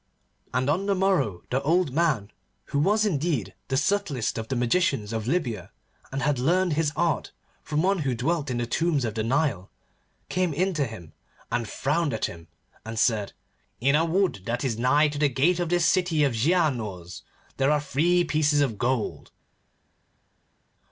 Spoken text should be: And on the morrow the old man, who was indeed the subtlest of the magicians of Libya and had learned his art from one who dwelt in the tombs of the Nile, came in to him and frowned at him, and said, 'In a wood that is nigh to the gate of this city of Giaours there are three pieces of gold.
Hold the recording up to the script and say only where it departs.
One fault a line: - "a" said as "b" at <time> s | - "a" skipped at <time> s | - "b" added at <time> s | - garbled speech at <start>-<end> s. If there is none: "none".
none